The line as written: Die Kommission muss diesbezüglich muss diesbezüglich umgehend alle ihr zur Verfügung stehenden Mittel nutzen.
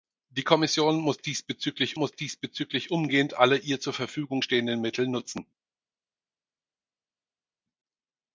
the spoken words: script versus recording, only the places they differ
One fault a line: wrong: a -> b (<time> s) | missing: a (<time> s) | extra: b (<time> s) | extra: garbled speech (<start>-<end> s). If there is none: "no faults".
no faults